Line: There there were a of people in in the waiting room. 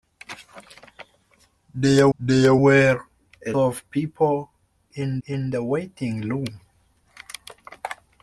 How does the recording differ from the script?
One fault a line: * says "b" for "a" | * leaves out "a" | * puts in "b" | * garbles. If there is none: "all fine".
all fine